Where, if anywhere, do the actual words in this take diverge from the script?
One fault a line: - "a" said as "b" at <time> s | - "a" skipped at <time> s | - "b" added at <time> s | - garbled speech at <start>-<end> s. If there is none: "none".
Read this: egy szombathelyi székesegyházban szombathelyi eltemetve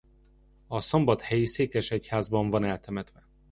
- "egy" said as "a" at 0.7 s
- "szombathelyi" said as "van" at 2.5 s